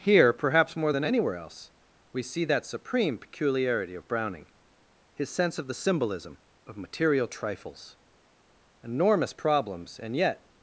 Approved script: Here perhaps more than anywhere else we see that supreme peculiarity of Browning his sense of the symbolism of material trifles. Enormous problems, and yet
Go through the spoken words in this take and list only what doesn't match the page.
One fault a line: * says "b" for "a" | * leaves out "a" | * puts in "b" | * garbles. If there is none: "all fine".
all fine